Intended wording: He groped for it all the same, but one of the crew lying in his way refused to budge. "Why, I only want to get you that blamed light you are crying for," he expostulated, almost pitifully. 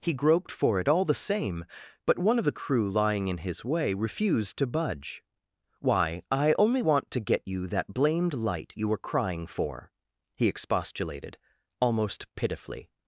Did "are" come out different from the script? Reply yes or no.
yes